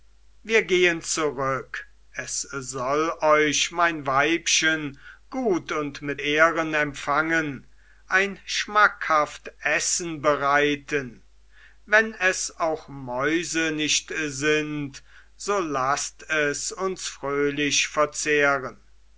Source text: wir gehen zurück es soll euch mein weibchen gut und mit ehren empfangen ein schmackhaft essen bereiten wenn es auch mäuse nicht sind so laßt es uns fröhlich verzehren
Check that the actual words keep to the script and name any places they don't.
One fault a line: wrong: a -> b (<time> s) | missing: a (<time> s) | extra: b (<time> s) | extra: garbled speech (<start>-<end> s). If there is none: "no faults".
no faults